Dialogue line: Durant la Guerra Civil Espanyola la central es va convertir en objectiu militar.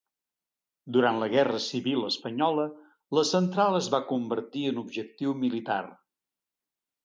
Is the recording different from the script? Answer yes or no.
no